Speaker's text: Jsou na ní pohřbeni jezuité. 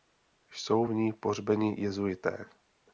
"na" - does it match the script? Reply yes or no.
no